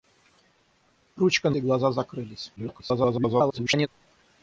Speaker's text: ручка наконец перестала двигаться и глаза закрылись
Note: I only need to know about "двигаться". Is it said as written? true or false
false